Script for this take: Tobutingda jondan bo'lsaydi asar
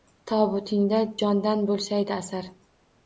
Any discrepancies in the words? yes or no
no